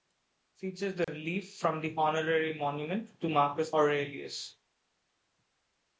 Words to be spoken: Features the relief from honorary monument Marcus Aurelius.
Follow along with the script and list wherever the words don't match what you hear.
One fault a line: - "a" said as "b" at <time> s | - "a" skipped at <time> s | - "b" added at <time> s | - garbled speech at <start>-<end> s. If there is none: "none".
- "the" added at 1.8 s
- "to" added at 3.2 s